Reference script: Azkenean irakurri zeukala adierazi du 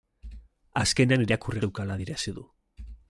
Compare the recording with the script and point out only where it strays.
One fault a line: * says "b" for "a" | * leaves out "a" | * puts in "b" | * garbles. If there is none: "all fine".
all fine